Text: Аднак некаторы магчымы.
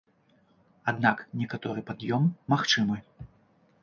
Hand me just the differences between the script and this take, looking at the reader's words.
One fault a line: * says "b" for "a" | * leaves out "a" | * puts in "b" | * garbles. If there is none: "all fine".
* puts in "пад'ём"